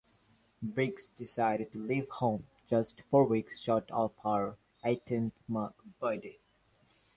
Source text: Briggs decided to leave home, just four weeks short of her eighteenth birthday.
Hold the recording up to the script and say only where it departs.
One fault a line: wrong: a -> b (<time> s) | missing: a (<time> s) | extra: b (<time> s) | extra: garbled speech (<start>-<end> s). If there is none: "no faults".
no faults